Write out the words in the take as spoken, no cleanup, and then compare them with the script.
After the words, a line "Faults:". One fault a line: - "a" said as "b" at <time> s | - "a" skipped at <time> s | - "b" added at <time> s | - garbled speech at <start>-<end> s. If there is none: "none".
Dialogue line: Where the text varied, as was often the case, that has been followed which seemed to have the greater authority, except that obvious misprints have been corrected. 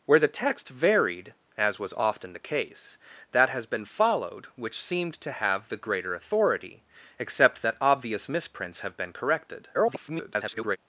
Where the text varied, as was often the case, that has been followed which seemed to have the greater authority, except that obvious misprints have been corrected. [garbled]
Faults:
- garbled speech at 9.7-10.8 s